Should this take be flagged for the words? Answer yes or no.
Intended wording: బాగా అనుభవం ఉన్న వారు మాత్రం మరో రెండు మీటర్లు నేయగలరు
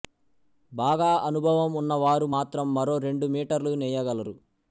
no